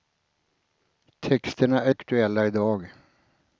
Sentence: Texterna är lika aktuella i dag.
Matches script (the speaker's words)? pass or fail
fail